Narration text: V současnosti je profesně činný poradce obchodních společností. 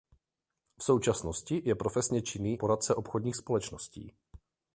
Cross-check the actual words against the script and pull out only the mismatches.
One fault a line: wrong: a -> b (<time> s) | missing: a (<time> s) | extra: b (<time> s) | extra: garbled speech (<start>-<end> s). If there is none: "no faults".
no faults